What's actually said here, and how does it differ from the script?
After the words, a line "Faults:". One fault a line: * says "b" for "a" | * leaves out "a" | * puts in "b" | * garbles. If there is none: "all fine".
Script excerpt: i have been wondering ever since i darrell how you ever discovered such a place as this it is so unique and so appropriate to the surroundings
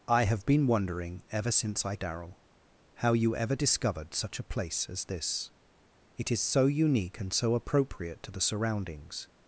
i have been wondering ever since i darrell how you ever discovered such a place as this it is so unique and so appropriate to the surroundings
Faults:
all fine